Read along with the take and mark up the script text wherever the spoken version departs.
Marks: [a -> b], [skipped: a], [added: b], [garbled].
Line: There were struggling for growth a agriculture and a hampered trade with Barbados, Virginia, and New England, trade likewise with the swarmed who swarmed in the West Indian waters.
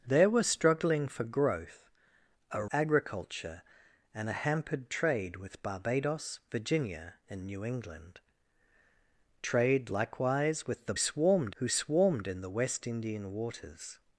There were struggling for growth a agriculture and a hampered trade with Barbados, Virginia, and New England, trade likewise with the swarmed who swarmed in the West Indian waters.